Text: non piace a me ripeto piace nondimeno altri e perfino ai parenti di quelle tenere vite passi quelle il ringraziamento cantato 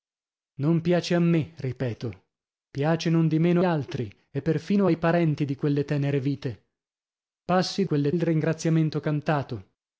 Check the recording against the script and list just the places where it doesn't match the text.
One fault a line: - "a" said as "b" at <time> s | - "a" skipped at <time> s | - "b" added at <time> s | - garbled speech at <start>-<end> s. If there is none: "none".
none